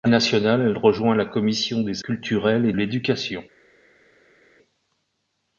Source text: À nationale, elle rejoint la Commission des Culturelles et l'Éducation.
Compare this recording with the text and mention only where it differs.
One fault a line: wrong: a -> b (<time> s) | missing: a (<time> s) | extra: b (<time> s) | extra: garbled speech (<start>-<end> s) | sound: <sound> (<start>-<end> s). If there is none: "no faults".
no faults